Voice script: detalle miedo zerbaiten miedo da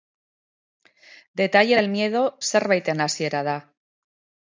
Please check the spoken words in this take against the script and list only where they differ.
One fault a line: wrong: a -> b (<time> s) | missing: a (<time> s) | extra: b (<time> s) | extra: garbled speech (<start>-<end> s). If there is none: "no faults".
extra: del (1.8 s)
wrong: miedo -> hasiera (3.1 s)